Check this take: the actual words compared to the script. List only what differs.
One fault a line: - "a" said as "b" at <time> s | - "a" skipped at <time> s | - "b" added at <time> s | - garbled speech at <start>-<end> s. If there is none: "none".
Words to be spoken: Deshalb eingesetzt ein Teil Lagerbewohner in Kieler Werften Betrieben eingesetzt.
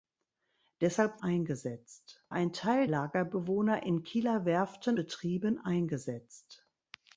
none